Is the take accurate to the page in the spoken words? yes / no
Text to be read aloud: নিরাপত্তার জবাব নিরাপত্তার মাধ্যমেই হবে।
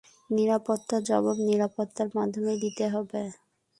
no